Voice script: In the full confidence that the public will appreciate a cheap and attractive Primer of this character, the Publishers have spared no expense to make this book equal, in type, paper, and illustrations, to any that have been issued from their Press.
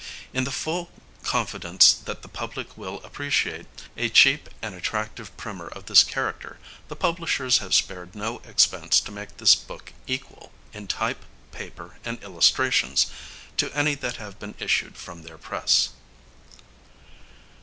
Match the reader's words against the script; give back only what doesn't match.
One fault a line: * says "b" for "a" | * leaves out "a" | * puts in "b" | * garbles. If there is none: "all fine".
all fine